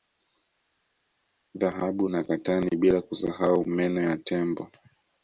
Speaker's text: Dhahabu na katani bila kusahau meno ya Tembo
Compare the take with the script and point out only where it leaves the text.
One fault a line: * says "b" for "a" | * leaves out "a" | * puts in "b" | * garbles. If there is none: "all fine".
all fine